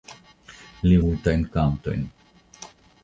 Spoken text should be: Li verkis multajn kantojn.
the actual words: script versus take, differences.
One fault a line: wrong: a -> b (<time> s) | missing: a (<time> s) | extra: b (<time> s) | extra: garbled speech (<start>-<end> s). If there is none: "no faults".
missing: verkis (1.0 s)